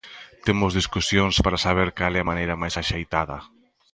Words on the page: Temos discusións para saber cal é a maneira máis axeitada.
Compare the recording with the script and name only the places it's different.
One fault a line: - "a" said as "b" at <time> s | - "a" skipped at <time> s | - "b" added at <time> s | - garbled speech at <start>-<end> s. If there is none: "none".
none